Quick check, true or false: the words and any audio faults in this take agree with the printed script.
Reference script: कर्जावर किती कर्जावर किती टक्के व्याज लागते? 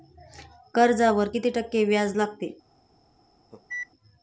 false